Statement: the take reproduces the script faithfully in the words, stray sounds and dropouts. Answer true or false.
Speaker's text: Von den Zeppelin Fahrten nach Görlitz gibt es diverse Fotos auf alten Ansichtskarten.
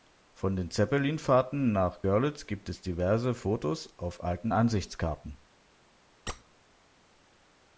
false